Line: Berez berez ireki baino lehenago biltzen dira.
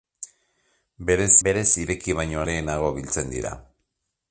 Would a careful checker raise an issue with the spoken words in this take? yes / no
no